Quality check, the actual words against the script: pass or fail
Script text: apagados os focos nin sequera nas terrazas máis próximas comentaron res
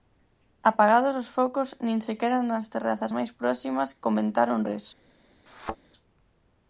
pass